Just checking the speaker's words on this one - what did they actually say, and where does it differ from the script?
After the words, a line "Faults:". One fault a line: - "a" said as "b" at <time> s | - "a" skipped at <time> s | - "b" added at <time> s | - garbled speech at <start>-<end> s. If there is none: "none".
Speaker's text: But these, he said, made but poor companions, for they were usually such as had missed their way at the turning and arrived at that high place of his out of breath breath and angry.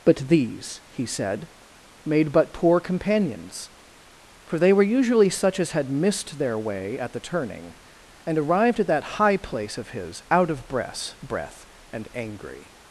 But these, he said, made but poor companions, for they were usually such as had missed their way at the turning and arrived at that high place of his out of breath breath and angry.
Faults:
none